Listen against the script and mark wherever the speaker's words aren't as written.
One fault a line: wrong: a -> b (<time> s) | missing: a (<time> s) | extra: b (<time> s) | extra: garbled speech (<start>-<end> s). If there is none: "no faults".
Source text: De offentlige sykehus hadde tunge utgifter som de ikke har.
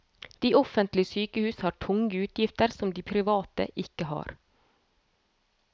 wrong: hadde -> har (1.6 s)
extra: private (3.1 s)